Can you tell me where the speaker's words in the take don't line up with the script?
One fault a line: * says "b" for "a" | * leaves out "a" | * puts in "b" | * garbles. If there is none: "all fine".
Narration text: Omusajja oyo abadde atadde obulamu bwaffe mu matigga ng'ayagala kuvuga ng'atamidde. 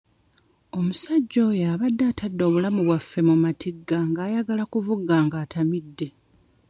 all fine